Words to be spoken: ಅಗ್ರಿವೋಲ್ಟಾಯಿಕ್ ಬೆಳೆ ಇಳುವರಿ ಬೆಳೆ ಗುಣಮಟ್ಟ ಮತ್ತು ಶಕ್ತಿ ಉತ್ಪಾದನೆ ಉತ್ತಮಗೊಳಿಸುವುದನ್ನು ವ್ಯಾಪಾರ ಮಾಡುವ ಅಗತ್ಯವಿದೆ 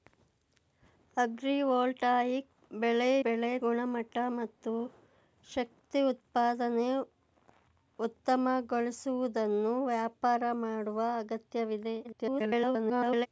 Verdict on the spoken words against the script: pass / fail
fail